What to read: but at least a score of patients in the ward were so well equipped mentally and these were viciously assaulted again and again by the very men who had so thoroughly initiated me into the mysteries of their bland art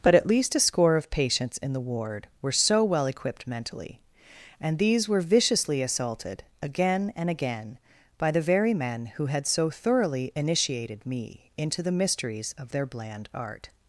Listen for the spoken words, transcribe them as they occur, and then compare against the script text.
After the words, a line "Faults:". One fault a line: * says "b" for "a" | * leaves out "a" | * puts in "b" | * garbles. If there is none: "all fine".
but at least a score of patients in the ward were so well equipped mentally and these were viciously assaulted again and again by the very men who had so thoroughly initiated me into the mysteries of their bland art
Faults:
all fine